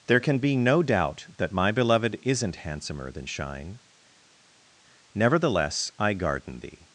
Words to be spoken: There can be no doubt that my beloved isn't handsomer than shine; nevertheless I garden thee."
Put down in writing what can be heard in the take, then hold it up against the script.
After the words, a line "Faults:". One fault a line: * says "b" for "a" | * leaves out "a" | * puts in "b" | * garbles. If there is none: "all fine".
There can be no doubt that my beloved isn't handsomer than shine; nevertheless I garden thee."
Faults:
all fine